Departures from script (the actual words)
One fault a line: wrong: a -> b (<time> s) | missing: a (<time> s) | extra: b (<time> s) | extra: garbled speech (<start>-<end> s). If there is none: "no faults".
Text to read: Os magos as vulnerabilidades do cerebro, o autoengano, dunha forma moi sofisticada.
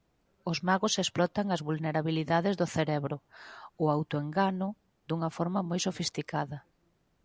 extra: explotan (1.0 s)